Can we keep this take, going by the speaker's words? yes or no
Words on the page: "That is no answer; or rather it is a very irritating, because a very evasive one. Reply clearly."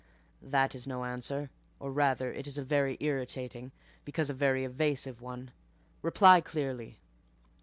yes